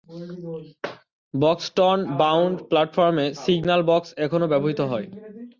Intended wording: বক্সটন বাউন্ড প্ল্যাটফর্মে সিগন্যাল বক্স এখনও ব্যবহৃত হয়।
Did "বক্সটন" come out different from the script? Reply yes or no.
no